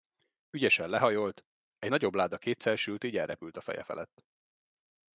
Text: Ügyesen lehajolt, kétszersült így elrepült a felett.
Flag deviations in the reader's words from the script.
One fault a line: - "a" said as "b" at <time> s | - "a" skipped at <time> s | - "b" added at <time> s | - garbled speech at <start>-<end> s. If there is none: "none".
- "egy nagyobb láda" added at 1.8 s
- "feje" added at 3.6 s